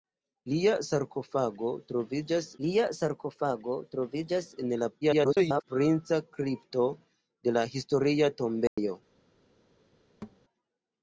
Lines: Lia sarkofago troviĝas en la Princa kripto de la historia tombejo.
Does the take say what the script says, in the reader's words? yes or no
no